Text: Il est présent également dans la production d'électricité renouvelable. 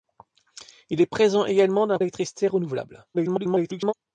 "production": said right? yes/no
no